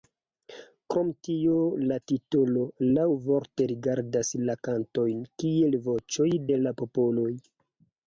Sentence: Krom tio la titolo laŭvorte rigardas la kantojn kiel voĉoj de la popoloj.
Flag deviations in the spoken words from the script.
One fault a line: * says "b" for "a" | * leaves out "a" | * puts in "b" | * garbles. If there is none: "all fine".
all fine